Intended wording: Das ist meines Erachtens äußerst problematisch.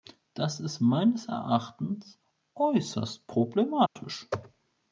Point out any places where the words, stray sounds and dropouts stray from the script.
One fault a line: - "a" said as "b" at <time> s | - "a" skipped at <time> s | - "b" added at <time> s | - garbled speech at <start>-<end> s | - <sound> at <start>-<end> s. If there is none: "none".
- dropout at 3.9-4.0 s